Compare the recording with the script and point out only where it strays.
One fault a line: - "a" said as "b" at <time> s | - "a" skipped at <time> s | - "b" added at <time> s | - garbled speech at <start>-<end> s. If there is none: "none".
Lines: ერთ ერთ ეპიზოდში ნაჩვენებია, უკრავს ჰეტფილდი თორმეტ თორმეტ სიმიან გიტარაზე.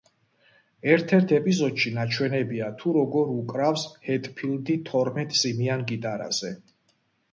- "თუ როგორ" added at 2.8 s
- "თორმეტ" skipped at 5.4 s